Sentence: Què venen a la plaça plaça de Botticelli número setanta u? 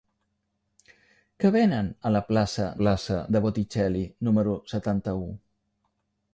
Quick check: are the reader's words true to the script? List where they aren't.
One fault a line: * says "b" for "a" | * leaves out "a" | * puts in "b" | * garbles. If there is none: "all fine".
all fine